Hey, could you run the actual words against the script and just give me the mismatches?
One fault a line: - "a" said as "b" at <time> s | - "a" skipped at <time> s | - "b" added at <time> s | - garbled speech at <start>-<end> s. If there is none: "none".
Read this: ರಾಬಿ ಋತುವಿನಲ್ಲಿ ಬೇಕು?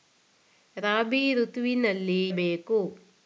none